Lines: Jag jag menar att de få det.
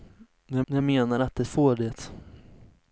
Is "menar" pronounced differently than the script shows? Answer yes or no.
no